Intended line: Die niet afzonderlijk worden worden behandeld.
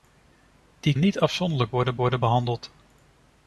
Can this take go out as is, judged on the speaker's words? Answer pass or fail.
pass